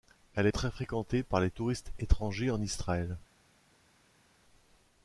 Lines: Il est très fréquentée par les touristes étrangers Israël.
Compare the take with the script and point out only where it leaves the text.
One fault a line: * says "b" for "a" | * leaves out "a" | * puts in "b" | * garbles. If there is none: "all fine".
* says "Elle" for "Il"
* puts in "en"